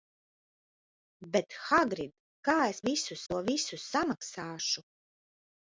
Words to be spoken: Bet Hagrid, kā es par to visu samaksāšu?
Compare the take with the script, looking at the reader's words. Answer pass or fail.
fail